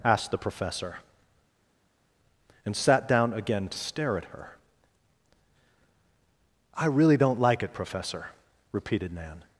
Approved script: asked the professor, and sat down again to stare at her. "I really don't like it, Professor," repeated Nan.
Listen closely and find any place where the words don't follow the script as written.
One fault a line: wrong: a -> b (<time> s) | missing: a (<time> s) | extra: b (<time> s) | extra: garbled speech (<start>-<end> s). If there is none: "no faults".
no faults